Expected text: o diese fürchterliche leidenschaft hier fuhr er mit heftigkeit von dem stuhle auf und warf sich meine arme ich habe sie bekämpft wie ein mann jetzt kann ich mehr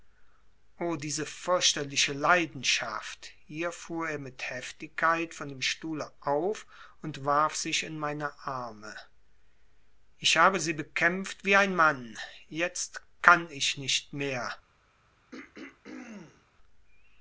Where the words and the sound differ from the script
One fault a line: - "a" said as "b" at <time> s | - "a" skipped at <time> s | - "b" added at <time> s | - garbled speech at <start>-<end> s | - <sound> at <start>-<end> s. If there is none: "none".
- "in" added at 7.8 s
- "nicht" added at 13.8 s
- throat clearing at 15.3-16.5 s